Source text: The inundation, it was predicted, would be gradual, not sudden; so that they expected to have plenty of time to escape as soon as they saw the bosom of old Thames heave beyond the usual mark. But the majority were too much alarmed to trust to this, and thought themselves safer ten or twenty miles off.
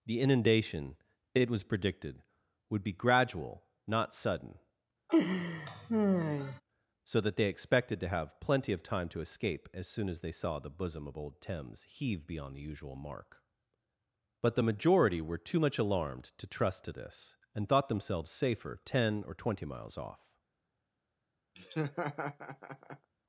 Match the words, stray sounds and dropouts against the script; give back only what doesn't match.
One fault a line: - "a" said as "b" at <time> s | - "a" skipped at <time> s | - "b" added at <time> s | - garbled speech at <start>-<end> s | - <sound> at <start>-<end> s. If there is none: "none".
- laugh at 5.1-6.6 s
- laugh at 21.6-23.1 s